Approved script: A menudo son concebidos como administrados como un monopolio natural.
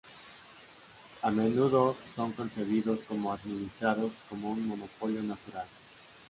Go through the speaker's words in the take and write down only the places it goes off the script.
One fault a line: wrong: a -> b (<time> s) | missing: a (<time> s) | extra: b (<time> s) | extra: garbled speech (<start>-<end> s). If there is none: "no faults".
no faults